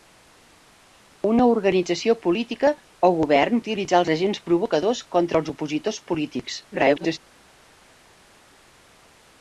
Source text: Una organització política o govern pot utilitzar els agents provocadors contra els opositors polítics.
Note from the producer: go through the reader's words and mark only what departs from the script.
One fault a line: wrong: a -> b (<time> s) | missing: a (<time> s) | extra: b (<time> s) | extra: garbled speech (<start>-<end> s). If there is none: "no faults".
missing: pot (3.6 s)
extra: garbled speech (6.7-7.2 s)